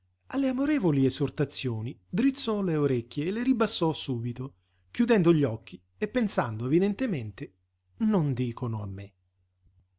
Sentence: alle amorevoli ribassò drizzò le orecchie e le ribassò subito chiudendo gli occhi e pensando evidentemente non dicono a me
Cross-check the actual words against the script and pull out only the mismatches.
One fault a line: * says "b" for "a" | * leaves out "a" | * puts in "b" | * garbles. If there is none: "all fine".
* says "esortazioni" for "ribassò"